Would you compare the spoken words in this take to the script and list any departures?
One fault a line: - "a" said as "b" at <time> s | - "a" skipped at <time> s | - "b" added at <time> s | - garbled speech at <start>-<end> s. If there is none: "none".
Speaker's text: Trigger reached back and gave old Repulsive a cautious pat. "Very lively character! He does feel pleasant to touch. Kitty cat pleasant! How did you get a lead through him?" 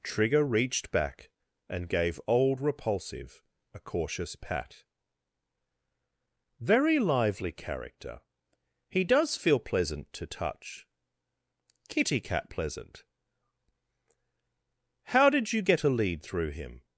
none